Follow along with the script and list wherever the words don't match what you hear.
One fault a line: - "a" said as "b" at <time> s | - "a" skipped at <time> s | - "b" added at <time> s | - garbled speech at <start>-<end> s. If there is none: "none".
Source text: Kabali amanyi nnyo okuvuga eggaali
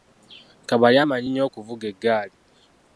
none